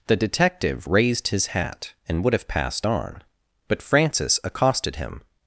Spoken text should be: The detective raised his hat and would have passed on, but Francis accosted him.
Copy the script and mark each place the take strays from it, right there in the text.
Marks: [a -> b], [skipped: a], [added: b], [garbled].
The detective raised his hat and would have passed on, but Francis accosted him.